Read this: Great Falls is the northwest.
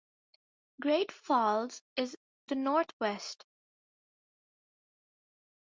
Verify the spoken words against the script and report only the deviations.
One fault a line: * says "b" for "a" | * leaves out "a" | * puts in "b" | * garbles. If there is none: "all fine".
all fine